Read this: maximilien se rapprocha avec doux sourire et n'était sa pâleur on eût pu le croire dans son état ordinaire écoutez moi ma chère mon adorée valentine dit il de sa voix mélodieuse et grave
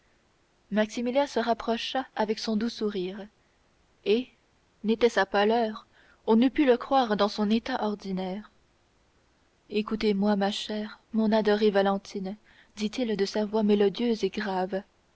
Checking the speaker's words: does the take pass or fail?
fail